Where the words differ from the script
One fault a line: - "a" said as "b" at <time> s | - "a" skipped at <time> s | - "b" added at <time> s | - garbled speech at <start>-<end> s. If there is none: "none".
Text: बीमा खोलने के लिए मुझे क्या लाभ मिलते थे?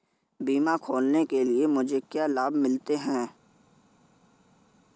- "थे" said as "हैं" at 3.0 s